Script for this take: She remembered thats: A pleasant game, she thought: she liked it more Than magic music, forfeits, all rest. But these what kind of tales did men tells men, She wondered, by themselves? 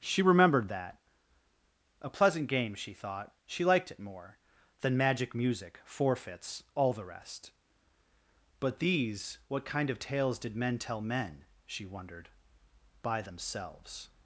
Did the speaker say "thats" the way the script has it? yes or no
no